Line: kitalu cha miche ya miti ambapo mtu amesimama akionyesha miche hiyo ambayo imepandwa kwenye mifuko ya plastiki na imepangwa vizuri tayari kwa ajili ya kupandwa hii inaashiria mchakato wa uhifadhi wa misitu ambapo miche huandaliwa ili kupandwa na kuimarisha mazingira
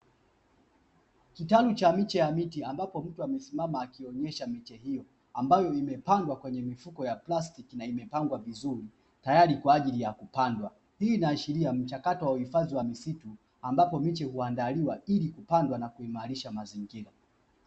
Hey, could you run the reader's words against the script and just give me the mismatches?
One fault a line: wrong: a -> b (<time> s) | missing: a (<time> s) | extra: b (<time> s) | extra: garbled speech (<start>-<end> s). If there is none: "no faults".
no faults